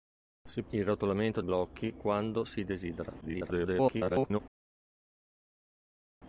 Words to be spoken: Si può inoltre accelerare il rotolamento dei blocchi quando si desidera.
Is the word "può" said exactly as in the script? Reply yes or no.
no